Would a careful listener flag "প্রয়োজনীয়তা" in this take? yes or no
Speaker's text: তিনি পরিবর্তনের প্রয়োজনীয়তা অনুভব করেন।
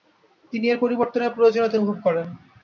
no